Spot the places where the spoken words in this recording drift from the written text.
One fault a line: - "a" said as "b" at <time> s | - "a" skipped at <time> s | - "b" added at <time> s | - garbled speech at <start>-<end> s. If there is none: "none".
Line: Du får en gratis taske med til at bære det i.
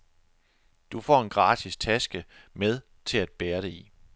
none